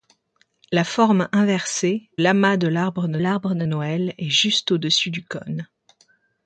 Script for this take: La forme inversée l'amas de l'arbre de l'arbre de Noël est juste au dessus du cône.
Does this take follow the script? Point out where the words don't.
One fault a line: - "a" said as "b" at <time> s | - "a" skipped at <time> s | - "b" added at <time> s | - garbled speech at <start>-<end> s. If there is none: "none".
none